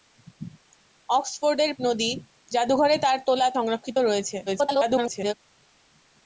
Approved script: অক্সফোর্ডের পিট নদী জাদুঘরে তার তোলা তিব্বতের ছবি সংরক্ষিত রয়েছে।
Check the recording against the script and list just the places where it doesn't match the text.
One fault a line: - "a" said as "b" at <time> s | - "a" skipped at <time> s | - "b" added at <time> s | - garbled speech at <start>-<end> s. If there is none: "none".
- "পিট" skipped at 1.7 s
- "তিব্বতের ছবি" skipped at 3.5 s
- garbled speech at 4.5-5.3 s